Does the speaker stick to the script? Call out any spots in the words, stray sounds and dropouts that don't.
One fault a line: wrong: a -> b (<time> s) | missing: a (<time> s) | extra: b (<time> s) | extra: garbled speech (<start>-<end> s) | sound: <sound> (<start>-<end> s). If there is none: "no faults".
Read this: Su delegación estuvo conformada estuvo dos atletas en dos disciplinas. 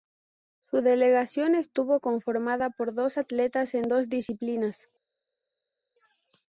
wrong: estuvo -> por (2.7 s)